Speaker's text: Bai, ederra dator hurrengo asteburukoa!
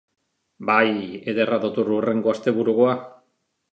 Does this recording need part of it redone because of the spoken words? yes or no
no